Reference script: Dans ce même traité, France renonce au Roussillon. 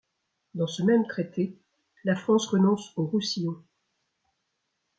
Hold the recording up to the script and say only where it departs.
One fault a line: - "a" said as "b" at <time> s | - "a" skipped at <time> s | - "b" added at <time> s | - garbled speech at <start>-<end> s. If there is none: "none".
- "la" added at 2.0 s